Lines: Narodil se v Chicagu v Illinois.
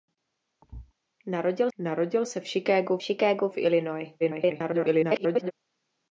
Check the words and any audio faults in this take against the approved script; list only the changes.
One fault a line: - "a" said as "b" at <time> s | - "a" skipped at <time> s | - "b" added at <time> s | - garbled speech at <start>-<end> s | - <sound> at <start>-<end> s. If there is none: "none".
- thud at 0.6-0.9 s
- "narodil" added at 1.8 s
- "Chicagu" added at 3.0 s
- garbled speech at 4.2-5.5 s